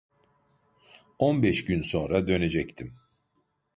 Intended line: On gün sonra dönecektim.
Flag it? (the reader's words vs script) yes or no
yes